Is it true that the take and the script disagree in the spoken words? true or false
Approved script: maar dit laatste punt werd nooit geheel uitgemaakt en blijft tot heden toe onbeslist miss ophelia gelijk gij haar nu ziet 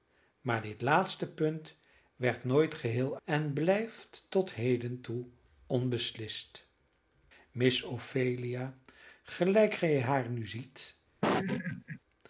true